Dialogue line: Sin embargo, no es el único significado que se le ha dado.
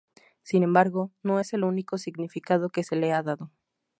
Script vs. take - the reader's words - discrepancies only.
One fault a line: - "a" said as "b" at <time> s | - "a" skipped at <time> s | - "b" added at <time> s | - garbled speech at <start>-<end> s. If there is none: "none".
none